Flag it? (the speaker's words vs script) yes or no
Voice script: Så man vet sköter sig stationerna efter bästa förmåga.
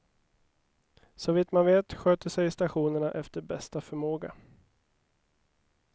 yes